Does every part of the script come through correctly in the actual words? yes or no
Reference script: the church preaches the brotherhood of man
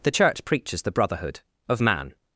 yes